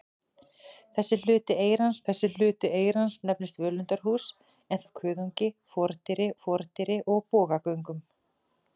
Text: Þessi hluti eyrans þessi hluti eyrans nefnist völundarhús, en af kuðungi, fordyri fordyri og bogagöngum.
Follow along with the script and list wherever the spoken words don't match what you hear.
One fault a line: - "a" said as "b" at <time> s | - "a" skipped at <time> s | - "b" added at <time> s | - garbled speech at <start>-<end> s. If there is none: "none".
none